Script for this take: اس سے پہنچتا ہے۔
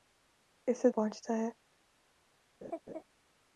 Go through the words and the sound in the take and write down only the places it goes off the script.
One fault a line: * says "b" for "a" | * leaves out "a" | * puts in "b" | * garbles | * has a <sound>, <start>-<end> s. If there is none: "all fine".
* has a laugh, 2.6-3.0 s